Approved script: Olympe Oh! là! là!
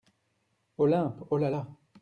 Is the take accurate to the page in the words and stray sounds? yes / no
yes